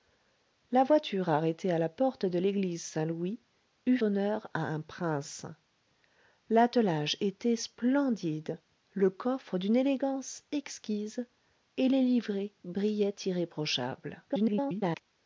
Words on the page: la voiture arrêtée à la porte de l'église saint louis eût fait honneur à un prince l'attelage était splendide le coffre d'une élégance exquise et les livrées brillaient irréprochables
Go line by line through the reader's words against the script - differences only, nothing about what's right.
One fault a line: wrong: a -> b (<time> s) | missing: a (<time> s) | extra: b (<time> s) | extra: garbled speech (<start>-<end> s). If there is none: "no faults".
missing: fait (4.0 s)
extra: garbled speech (14.3-15.0 s)